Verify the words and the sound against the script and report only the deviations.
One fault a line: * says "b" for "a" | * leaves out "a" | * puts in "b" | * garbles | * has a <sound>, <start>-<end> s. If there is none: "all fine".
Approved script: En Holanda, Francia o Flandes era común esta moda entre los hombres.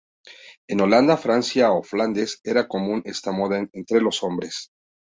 all fine